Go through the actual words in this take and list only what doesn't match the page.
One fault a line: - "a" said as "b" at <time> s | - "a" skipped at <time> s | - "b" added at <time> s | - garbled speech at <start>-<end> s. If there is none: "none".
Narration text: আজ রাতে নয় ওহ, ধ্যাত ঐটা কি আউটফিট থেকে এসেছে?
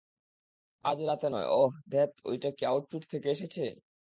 none